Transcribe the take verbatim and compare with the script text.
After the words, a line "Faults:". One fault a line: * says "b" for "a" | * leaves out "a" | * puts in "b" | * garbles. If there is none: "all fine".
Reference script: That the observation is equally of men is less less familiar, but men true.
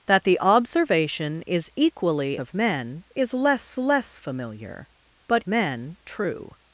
That the observation is equally of men is less less familiar, but men true.
Faults:
all fine